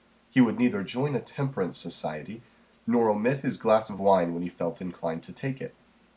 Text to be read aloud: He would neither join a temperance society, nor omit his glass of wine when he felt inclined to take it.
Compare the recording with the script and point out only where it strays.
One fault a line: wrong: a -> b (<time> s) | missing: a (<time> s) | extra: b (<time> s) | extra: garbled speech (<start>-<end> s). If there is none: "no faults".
no faults